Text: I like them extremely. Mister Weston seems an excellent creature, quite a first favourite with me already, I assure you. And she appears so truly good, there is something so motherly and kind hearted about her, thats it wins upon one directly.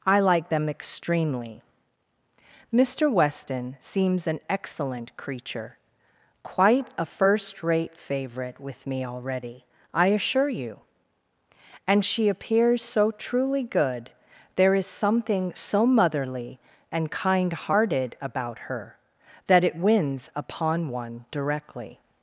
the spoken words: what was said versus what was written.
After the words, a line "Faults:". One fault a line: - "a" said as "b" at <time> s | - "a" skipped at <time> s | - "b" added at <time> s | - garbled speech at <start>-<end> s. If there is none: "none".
I like them extremely. Mister Weston seems an excellent creature, quite a first rate favourite with me already, I assure you. And she appears so truly good, there is something so motherly and kind hearted about her, that it wins upon one directly.
Faults:
- "rate" added at 7.6 s
- "thats" said as "that" at 19.5 s